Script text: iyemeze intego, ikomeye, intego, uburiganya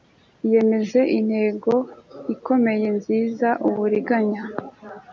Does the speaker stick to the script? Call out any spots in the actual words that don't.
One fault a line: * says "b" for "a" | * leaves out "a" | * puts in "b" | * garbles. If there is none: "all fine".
* says "nziza" for "intego"